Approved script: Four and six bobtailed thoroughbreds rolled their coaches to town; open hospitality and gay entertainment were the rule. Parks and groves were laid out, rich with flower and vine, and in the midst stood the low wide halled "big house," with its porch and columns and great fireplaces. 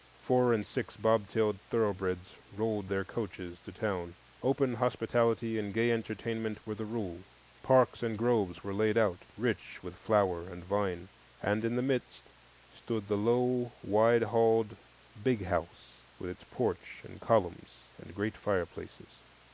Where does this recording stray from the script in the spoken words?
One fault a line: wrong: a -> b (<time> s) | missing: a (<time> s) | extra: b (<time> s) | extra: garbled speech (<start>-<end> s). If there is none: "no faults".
no faults